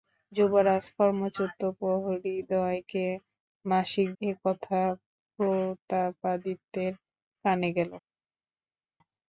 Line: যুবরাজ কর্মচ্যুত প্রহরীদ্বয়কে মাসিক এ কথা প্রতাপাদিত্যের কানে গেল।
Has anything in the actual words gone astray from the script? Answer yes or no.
no